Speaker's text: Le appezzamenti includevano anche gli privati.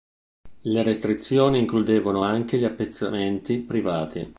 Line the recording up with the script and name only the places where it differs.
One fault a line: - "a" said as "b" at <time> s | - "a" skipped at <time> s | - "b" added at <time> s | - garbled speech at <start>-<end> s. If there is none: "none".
- "appezzamenti" said as "restrizioni" at 0.8 s
- "appezzamenti" added at 2.6 s